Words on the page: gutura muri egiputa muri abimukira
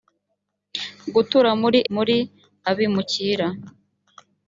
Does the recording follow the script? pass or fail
fail